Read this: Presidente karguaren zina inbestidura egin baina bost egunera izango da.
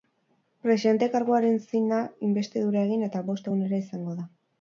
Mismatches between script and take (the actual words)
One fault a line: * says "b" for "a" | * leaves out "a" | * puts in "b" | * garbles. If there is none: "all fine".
* says "eta" for "baina"